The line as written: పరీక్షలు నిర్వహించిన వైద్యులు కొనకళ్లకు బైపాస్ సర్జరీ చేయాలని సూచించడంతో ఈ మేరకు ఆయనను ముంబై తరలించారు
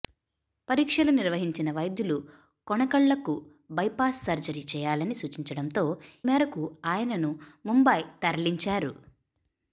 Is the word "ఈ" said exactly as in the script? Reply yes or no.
no